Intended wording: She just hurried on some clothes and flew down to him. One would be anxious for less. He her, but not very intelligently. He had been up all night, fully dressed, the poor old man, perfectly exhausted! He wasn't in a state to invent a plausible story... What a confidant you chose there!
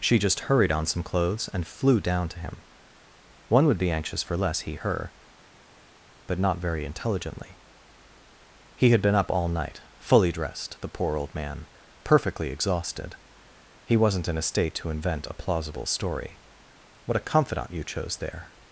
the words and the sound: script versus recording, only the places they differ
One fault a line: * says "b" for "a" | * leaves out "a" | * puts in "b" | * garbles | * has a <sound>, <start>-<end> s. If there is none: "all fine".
all fine